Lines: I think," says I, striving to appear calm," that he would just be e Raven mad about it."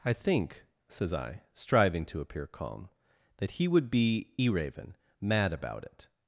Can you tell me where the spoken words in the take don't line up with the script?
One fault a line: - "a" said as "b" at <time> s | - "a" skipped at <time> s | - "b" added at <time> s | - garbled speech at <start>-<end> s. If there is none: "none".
- "just" skipped at 3.9 s